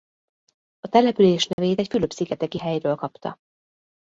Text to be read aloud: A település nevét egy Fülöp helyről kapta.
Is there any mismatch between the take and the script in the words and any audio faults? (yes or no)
yes